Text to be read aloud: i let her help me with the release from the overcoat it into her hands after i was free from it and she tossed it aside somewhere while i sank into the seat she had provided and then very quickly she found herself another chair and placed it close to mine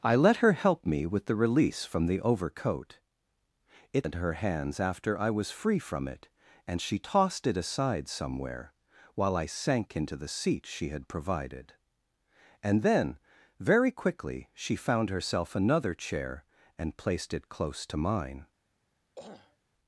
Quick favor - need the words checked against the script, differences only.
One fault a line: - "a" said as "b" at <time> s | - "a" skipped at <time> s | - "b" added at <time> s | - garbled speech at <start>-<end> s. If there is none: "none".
none